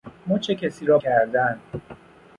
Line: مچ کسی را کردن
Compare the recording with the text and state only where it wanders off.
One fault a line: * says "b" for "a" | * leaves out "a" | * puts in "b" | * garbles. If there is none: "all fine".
all fine